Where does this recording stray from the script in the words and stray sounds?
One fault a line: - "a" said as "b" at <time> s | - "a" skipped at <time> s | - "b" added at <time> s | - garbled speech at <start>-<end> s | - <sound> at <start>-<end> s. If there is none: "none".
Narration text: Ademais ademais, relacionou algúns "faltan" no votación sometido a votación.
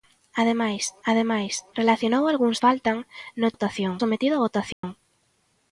- dropout at 4.7-4.8 s